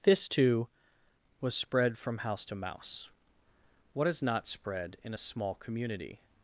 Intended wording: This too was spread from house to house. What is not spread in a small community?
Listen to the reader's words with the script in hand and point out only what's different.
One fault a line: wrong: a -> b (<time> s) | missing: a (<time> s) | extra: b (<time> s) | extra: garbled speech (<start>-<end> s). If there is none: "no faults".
wrong: house -> mouse (2.5 s)